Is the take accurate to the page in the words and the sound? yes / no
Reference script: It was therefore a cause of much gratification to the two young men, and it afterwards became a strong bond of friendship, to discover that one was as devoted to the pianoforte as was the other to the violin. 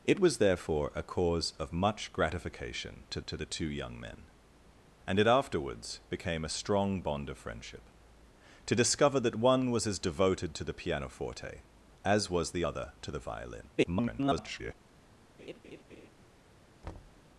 no